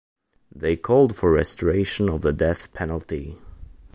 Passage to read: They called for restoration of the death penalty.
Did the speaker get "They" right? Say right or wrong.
right